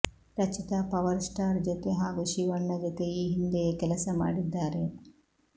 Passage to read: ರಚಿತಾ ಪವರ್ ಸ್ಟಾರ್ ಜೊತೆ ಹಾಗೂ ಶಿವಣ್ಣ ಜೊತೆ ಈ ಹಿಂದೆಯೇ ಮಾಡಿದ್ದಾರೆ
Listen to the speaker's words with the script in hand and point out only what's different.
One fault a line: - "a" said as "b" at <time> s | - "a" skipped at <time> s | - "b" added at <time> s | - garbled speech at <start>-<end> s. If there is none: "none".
- "ಕೆಲಸ" added at 3.8 s